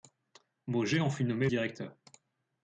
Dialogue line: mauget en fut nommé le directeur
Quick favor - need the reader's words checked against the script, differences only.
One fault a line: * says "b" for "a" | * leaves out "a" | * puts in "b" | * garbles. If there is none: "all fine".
* leaves out "le"